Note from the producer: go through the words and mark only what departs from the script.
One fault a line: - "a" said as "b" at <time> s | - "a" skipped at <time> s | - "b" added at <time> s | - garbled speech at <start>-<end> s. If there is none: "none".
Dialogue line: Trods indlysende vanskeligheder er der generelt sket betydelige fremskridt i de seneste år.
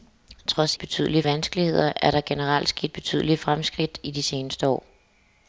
- "indlysende" said as "betydelige" at 0.8 s